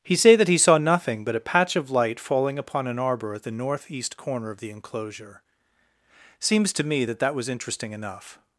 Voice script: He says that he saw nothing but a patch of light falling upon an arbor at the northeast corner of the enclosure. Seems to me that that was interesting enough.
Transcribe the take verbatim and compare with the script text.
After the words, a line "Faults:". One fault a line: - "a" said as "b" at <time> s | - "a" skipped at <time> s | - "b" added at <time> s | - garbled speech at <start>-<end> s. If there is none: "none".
He say that he saw nothing but a patch of light falling upon an arbor at the northeast corner of the enclosure. Seems to me that that was interesting enough.
Faults:
- "says" said as "say" at 0.1 s